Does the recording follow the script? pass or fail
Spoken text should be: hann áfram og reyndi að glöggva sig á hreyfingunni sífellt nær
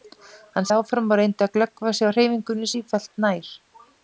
pass